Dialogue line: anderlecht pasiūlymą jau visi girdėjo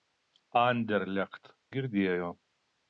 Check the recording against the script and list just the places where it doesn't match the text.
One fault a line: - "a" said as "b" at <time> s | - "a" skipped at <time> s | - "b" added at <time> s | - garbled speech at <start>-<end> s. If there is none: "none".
- "pasiūlymą jau visi" skipped at 1.5 s